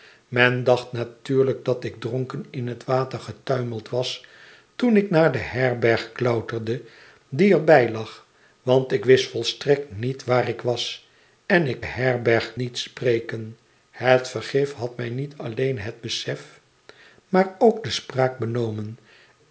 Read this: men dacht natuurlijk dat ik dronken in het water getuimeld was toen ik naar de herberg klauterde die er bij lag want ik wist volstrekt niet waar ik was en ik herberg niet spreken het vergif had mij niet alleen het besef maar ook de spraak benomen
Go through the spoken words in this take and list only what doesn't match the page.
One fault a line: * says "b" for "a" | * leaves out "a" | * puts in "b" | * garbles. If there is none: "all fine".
all fine